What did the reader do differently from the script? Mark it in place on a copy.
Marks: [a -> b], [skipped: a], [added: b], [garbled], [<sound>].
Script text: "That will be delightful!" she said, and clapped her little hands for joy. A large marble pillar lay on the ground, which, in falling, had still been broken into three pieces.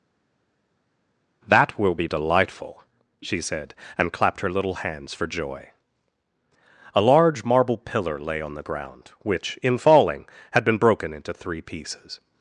"That will be delightful!" she said, and clapped her little hands for joy. A large marble pillar lay on the ground, which, in falling, had [skipped: still] been broken into three pieces.